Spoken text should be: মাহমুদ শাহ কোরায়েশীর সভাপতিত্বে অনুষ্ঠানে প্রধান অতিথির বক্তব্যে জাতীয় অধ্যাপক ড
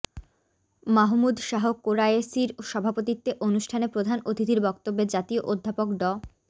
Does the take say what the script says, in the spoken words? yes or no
yes